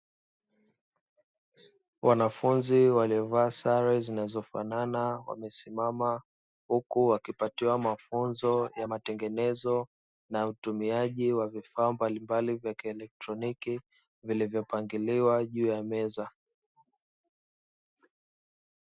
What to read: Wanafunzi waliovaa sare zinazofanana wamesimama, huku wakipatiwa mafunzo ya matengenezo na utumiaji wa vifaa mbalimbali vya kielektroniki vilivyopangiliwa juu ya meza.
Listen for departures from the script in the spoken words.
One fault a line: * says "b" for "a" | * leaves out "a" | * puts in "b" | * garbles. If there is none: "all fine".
all fine